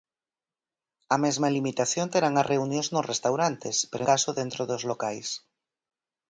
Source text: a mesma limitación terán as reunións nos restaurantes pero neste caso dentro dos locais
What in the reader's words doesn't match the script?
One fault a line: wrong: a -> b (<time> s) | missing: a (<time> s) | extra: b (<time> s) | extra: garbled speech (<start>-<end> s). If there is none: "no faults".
missing: neste (4.0 s)